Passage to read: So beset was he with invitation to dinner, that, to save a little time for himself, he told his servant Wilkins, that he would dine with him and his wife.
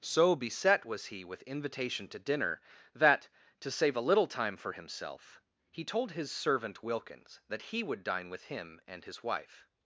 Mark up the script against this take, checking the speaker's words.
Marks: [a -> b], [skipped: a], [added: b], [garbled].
So beset was he with invitation to dinner, that, to save a little time for himself, he told his servant Wilkins, that he would dine with him and his wife.